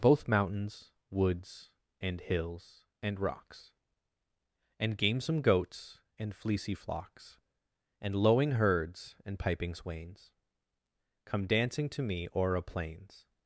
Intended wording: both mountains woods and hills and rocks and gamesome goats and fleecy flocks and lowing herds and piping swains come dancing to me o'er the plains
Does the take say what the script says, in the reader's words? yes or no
no